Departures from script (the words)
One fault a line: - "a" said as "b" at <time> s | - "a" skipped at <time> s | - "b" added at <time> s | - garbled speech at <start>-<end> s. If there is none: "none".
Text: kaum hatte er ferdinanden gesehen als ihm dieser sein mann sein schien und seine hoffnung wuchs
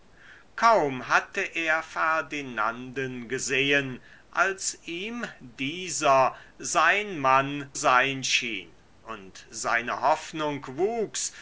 none